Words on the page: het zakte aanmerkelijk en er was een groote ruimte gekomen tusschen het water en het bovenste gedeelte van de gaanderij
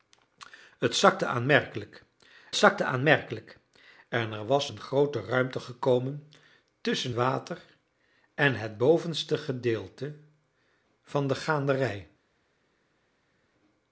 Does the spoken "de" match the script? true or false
true